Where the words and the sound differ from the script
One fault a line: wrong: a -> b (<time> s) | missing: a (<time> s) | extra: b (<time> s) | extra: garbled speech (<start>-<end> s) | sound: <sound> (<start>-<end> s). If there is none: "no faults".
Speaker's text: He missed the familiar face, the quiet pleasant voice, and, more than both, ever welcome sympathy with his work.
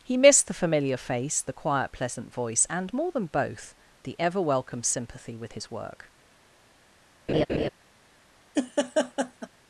extra: the (4.0 s)
sound: laugh (7.3-7.7 s)
sound: laugh (8.5-9.5 s)